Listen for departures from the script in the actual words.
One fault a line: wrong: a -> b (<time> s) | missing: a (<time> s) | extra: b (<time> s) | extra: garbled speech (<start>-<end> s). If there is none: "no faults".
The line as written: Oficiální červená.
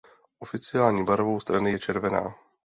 extra: barvou strany je (1.1 s)